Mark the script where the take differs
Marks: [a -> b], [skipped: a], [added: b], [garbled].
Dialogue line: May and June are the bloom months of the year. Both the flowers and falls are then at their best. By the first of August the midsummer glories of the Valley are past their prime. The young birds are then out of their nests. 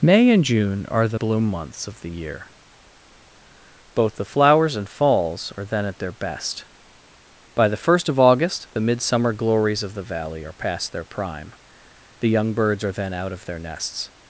May and June are the bloom months of the year. Both the flowers and falls are then at their best. By the first of August the midsummer glories of the Valley are past their prime. The young birds are then out of their nests.